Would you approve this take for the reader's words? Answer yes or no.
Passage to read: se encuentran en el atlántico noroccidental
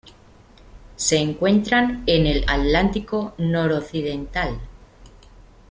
yes